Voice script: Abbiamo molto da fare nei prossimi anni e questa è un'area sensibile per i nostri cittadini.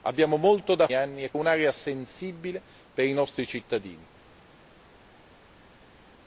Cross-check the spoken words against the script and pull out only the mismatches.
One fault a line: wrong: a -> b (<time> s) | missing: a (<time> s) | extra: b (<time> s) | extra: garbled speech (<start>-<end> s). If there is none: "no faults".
missing: fare nei prossimi (0.9 s)
missing: questa (1.3 s)